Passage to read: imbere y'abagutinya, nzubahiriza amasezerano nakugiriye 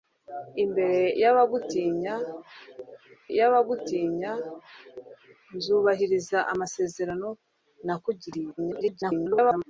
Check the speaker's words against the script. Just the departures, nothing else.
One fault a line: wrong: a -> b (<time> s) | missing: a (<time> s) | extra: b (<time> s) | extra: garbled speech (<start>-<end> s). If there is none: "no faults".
extra: y'abagutinya (3.4 s)
extra: garbled speech (8.6-9.6 s)